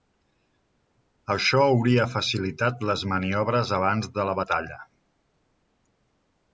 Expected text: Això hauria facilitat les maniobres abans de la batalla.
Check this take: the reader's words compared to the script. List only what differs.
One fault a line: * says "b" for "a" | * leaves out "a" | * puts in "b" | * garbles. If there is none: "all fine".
all fine